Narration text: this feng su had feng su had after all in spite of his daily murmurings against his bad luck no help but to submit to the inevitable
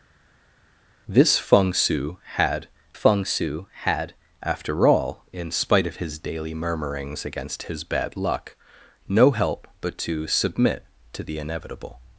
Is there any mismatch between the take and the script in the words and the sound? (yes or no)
no